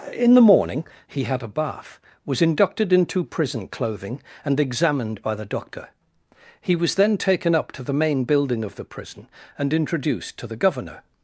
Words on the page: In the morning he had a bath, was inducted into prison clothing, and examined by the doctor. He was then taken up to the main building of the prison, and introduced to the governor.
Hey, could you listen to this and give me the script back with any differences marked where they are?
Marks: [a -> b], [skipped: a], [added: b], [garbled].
In the morning he had a bath, was inducted into prison clothing, and examined by the doctor. He was then taken up to the main building of the prison, and introduced to the governor.